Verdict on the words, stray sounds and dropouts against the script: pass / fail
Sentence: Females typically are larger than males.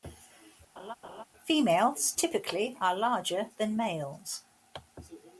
fail